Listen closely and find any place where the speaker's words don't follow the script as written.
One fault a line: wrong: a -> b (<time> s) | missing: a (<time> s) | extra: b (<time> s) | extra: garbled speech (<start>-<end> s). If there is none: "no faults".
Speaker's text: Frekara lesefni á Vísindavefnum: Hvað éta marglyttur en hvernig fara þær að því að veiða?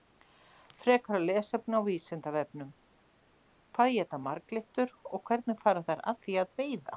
wrong: en -> og (5.2 s)